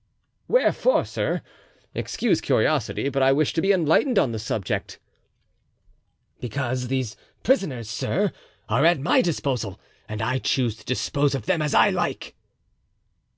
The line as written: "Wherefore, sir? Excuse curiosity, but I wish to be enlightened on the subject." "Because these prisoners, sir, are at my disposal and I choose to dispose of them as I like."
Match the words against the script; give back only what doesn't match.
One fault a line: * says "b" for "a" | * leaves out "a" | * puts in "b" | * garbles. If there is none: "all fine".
all fine